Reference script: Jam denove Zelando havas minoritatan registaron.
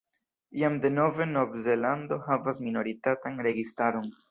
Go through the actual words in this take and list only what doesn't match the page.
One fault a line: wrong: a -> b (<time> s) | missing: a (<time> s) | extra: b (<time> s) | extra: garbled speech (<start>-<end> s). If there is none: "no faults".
extra: Nov (1.4 s)